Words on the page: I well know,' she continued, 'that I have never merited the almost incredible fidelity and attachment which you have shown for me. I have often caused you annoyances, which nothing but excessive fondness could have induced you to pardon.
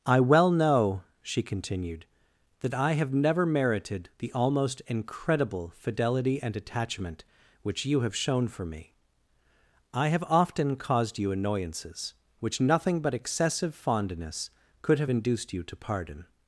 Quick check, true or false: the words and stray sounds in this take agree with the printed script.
true